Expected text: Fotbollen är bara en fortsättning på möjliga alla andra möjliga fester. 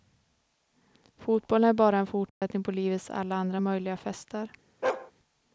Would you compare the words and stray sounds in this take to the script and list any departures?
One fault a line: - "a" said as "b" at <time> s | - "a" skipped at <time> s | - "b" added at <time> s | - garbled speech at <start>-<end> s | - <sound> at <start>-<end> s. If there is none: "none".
- dropout at 2.3-2.4 s
- "möjliga" said as "livets" at 2.7 s
- bark at 4.8-5.1 s